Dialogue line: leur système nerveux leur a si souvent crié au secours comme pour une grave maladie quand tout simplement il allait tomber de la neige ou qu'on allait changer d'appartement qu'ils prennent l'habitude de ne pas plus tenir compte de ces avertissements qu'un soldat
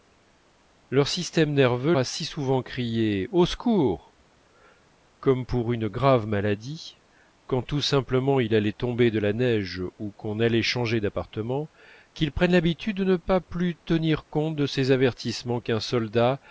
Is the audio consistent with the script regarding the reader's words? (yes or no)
no